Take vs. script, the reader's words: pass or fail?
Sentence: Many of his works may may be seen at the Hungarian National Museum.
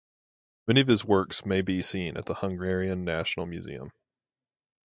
fail